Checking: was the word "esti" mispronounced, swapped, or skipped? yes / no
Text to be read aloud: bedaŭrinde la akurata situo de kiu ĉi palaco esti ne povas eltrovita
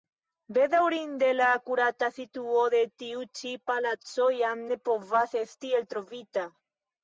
yes